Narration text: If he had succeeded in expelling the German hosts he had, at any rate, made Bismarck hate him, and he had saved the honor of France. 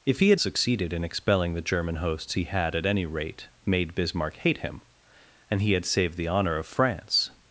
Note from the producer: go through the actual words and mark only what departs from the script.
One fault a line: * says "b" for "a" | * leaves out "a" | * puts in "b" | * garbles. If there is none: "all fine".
all fine